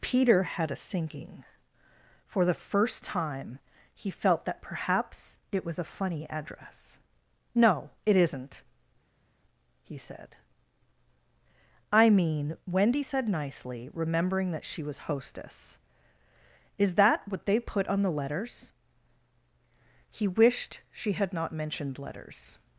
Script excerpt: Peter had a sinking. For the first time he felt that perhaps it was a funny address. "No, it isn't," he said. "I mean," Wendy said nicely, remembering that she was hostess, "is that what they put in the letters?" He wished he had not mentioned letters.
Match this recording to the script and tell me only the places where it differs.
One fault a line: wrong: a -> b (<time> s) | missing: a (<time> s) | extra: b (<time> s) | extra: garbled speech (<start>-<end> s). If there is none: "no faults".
wrong: in -> on (17.9 s)
wrong: he -> she (20.9 s)